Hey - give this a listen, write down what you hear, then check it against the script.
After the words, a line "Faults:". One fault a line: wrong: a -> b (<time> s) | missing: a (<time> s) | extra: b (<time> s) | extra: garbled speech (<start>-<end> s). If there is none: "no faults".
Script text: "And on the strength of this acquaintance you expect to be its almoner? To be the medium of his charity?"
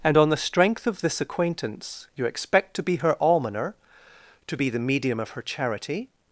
"And on the strength of this acquaintance you expect to be her almoner? To be the medium of her charity?"
Faults:
wrong: its -> her (3.0 s)
wrong: his -> her (5.3 s)